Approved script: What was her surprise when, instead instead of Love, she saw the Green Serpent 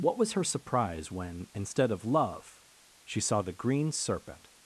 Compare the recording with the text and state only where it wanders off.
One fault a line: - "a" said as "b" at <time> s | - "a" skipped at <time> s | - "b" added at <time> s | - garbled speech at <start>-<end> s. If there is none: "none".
- "instead" skipped at 1.9 s